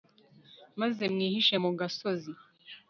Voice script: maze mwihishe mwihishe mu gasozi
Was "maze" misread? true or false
false